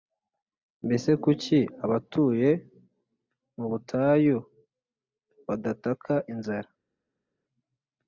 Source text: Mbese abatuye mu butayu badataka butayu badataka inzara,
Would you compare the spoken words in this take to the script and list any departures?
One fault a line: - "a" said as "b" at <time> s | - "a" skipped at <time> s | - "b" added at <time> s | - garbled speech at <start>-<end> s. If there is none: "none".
- "kuki" added at 1.2 s
- "butayu badataka" skipped at 6.1 s